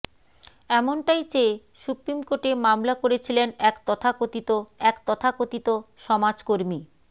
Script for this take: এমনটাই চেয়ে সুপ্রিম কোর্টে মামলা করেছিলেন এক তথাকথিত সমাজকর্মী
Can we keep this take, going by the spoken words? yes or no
no